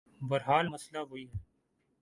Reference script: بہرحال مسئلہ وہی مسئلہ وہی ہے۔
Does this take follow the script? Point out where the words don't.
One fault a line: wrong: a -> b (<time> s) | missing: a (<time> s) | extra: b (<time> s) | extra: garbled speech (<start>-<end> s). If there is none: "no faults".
missing: مسئلہ وہی (1.3 s)